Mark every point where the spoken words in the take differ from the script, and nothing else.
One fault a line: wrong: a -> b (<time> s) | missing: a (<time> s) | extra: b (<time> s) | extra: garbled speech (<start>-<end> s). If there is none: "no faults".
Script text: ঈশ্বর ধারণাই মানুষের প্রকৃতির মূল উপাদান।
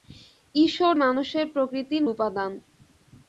missing: ধারণাই (0.9 s)
missing: মূল (2.0 s)